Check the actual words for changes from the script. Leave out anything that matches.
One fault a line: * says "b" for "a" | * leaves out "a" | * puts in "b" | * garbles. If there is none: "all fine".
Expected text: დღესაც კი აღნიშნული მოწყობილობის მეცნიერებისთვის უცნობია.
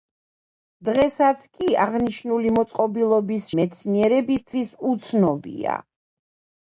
all fine